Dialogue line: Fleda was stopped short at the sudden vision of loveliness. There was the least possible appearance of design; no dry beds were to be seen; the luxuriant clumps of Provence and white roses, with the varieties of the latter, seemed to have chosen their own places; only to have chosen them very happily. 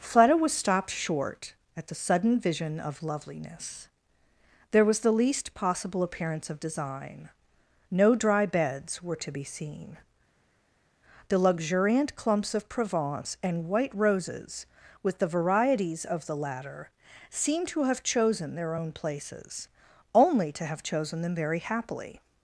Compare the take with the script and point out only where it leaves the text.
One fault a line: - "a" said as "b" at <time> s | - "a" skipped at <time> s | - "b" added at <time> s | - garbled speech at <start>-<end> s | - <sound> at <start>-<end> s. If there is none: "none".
none